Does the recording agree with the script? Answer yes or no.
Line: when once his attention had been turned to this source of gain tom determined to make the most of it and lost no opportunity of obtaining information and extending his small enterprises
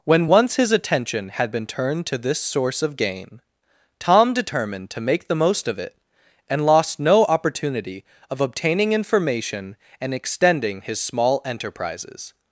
yes